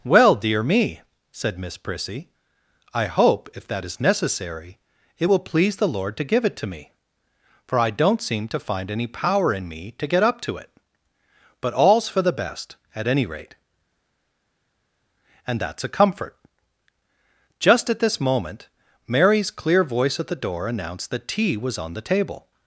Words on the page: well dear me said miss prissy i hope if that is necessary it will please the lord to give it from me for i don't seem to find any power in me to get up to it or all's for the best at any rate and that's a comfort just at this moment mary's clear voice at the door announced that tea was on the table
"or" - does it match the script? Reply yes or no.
no